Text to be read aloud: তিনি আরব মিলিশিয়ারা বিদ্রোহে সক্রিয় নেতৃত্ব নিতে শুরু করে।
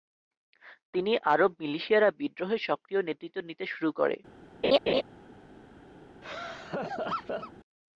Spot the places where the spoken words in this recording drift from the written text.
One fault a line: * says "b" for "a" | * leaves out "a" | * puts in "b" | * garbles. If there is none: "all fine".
all fine